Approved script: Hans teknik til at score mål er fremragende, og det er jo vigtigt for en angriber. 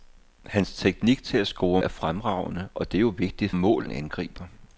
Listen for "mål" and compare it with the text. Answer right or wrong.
wrong